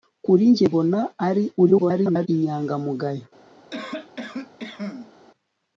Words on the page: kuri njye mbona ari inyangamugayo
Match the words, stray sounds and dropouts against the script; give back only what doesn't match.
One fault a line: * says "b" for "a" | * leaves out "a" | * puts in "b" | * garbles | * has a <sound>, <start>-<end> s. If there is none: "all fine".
* garbles
* has a cough, 3.7-5.1 s